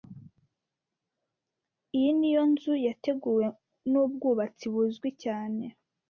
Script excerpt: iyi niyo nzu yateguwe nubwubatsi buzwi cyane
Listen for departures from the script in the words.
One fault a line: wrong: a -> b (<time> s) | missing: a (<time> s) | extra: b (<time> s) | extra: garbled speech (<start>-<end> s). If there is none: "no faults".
no faults